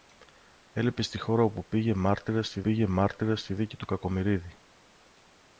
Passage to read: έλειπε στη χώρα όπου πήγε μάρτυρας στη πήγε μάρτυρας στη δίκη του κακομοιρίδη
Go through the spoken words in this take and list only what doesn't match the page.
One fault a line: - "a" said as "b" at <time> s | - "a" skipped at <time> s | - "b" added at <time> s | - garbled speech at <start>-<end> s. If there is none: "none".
none